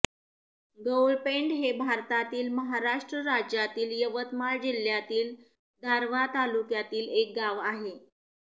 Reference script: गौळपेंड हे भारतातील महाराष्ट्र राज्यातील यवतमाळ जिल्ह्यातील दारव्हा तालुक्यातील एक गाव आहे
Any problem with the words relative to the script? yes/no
no